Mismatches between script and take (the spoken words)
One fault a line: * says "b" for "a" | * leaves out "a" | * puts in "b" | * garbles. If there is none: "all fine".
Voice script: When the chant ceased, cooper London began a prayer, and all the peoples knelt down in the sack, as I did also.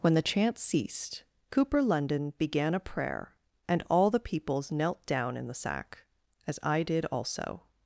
all fine